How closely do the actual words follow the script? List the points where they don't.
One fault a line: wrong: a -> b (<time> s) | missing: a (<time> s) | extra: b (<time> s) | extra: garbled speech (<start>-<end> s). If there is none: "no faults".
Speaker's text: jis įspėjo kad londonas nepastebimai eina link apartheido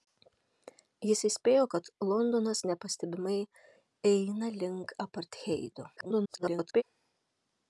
extra: garbled speech (6.0-6.8 s)